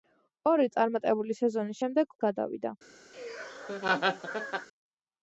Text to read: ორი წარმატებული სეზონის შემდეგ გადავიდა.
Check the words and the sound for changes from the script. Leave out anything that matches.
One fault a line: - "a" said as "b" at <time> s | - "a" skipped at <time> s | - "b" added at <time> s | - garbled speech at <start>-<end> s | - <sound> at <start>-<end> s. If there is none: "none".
- laugh at 3.1-4.7 s